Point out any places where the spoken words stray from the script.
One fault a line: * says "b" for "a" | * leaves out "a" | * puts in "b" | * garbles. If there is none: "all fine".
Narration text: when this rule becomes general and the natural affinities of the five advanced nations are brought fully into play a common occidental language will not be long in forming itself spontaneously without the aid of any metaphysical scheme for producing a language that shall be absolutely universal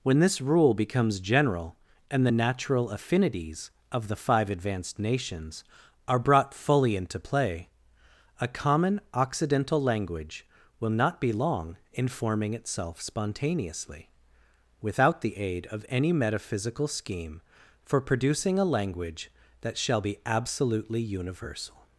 all fine